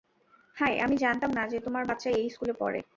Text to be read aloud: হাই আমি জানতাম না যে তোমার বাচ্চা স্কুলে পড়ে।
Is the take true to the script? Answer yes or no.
no